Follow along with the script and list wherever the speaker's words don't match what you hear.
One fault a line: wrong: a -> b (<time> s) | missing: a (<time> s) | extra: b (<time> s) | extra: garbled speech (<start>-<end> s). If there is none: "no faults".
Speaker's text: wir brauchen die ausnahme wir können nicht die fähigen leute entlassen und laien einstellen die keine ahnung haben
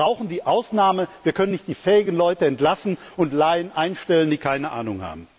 no faults